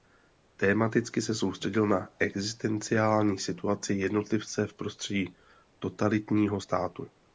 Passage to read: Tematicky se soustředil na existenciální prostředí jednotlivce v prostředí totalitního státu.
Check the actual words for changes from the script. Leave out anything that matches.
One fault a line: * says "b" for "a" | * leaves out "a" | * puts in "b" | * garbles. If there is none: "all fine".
* says "situaci" for "prostředí"